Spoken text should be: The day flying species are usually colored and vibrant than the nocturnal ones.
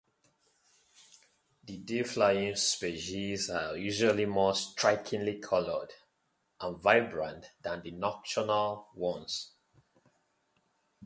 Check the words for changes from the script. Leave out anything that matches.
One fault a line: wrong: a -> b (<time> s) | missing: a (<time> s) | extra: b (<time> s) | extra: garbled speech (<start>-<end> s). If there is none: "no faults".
extra: more strikingly (4.2 s)